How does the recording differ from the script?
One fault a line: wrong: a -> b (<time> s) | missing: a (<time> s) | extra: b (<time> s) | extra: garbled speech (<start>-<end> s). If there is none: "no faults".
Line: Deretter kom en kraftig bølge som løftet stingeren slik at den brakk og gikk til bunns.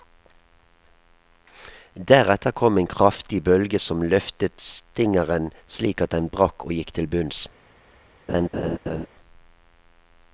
no faults